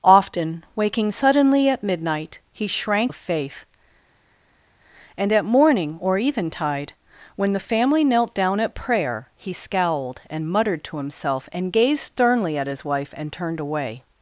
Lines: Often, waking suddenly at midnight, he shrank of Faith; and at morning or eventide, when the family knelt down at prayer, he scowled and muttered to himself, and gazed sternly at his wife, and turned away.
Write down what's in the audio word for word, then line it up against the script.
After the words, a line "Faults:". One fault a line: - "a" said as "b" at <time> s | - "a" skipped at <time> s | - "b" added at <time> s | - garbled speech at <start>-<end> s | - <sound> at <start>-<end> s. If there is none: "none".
Often, waking suddenly at midnight, he shrank of Faith; and at morning or eventide, when the family knelt down at prayer, he scowled and muttered to himself, and gazed sternly at his wife, and turned away.
Faults:
none